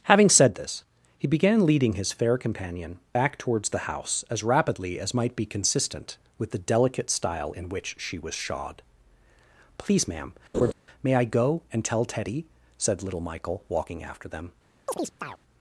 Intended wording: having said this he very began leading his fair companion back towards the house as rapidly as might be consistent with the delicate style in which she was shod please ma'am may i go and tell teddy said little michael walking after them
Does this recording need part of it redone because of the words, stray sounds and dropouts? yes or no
yes